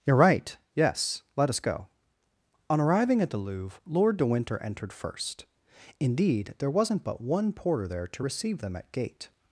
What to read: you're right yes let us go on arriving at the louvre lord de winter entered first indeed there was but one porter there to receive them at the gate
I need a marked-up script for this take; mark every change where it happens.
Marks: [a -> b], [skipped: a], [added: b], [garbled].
you're right yes let us go on arriving at the louvre lord de winter entered first indeed there [was -> wasn't] but one porter there to receive them at [skipped: the] gate